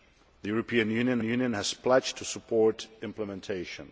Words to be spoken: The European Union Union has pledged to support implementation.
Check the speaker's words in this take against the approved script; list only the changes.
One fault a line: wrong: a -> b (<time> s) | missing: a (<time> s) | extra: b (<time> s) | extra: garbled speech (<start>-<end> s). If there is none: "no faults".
no faults